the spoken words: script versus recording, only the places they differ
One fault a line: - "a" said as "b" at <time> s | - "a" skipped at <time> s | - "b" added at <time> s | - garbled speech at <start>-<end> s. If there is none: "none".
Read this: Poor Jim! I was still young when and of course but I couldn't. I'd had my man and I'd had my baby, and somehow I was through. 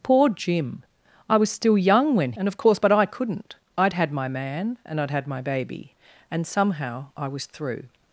none